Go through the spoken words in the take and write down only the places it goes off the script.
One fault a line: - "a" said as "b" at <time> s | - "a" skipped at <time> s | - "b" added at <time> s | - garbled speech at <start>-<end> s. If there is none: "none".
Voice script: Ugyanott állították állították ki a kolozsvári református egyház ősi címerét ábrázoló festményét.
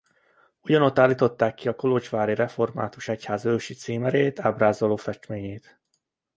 - "állították" skipped at 1.5 s